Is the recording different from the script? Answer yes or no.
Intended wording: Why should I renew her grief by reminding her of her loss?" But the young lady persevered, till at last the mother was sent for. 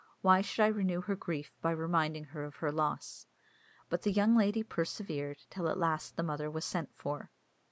no